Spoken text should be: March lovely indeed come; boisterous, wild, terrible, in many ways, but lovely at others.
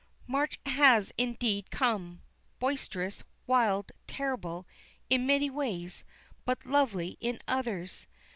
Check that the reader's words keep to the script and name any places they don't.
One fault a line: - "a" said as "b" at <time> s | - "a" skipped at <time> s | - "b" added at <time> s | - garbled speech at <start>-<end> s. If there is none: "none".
- "lovely" said as "has" at 0.7 s
- "at" said as "in" at 7.2 s